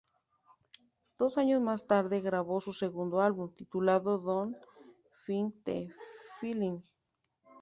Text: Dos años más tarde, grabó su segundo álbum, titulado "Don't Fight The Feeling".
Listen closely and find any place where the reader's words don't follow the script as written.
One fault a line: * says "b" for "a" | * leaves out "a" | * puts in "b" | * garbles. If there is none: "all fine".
all fine